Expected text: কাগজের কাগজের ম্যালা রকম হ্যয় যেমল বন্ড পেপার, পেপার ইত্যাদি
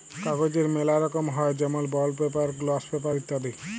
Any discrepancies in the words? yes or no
yes